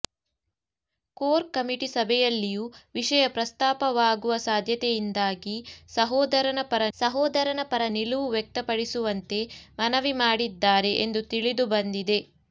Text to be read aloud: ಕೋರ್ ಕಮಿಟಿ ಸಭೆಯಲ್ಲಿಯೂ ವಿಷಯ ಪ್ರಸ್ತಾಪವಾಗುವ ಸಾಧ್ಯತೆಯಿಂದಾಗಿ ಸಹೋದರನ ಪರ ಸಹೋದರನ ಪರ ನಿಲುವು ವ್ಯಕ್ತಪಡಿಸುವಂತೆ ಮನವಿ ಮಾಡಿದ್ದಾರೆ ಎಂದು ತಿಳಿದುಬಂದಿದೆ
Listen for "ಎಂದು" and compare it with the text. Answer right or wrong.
right